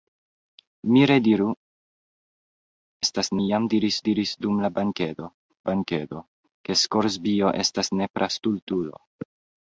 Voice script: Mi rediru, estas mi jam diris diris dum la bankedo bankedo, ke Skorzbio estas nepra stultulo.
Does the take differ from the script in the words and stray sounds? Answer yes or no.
no